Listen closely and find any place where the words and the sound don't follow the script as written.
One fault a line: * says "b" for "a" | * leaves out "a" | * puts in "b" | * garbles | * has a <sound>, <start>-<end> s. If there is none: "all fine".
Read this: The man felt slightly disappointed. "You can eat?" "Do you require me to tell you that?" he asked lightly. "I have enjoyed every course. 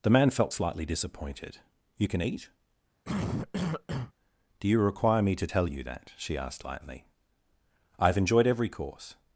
* has a cough, 3.0-4.1 s
* says "she" for "he"